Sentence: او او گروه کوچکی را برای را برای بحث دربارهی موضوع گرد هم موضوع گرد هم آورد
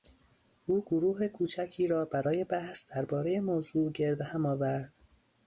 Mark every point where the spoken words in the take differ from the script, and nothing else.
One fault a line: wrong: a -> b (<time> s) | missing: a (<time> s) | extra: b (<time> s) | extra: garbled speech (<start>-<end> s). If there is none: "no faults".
missing: او (0.8 s)
missing: را برای (2.4 s)
missing: موضوع گرد هم (4.5 s)